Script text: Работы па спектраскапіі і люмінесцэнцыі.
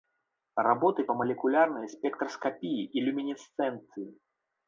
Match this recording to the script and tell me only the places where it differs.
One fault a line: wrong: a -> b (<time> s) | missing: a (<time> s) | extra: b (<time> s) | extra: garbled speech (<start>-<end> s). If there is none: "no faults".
extra: малекулярнай (1.2 s)